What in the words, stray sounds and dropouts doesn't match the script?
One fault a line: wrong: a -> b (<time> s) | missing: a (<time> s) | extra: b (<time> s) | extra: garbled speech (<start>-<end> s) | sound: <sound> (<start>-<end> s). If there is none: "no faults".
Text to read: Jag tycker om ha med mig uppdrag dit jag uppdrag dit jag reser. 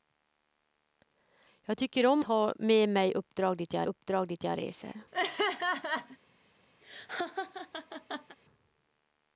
sound: laugh (5.1-6.2 s)
sound: laugh (6.8-8.4 s)